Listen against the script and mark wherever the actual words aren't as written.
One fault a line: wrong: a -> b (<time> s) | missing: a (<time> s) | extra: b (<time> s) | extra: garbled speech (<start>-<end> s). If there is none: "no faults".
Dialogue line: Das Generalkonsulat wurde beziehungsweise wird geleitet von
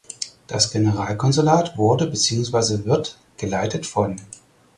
no faults